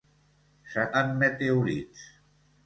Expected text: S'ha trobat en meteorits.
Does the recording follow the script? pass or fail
fail